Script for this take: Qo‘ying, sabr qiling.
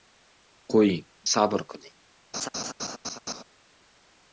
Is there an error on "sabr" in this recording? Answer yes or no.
no